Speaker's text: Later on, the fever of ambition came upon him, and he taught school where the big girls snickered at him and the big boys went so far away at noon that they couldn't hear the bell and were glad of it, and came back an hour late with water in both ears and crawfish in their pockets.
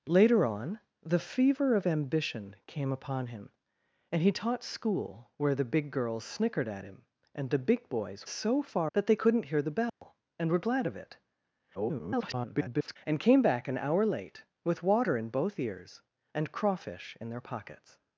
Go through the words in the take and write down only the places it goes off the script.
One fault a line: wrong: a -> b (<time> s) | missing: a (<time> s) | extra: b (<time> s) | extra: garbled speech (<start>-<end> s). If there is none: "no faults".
missing: went (8.3 s)
missing: away at noon (8.9 s)
extra: garbled speech (11.7-13.0 s)